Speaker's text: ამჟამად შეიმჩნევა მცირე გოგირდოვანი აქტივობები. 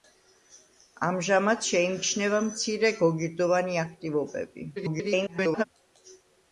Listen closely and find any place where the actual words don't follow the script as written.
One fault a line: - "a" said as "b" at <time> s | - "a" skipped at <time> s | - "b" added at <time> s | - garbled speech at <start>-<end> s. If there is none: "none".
- garbled speech at 4.8-5.6 s